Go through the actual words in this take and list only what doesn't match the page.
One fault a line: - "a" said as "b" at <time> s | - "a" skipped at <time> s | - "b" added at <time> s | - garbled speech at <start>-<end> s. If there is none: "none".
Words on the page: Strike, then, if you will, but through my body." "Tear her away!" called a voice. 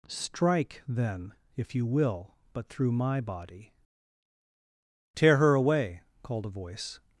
none